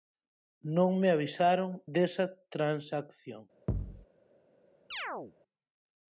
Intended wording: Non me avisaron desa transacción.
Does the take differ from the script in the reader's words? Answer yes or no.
no